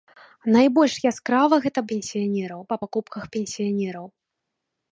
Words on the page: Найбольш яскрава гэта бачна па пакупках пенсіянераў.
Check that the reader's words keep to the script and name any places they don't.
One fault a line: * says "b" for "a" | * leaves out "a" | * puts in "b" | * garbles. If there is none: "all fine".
* says "пенсіянераў" for "бачна"